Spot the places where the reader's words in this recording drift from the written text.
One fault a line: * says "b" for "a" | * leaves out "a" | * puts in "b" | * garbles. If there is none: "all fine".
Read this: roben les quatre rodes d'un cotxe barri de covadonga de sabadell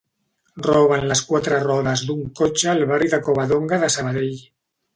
* puts in "al"